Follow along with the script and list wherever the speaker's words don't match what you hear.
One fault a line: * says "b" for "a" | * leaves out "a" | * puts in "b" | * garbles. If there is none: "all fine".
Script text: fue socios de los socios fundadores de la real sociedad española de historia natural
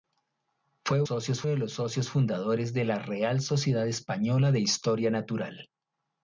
all fine